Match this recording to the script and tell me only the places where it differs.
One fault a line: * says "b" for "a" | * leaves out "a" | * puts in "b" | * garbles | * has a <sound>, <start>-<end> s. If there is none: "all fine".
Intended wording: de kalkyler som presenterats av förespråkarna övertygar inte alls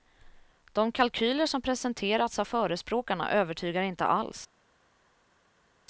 all fine